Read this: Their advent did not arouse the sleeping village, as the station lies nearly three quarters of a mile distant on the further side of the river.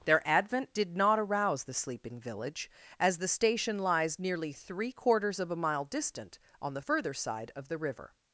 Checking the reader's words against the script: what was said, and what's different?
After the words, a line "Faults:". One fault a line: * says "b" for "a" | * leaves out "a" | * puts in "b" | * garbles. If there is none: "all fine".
Their advent did not arouse the sleeping village, as the station lies nearly three quarters of a mile distant on the further side of the river.
Faults:
all fine